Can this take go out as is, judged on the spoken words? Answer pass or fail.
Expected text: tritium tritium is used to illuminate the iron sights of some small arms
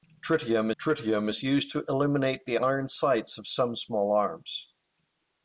pass